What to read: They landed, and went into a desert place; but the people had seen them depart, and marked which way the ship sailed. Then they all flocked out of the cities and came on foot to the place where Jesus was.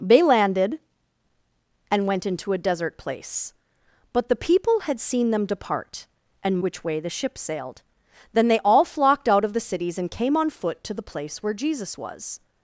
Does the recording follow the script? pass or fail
fail